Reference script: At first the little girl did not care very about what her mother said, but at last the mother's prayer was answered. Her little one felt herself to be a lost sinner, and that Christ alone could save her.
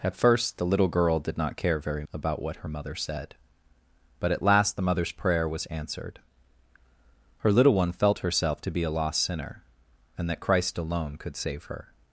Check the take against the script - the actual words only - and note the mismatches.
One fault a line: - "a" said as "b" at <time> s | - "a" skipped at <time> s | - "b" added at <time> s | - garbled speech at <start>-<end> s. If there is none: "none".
none